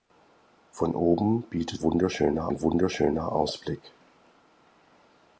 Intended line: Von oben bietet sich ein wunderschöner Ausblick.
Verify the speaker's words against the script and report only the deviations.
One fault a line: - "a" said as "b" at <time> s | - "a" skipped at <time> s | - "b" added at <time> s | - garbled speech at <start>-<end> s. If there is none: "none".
- "sich" said as "wunderschöner" at 1.8 s